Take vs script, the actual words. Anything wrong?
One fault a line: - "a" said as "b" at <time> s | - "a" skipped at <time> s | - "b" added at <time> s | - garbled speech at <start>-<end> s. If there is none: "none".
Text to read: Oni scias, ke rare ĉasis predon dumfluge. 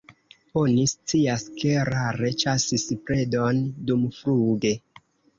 none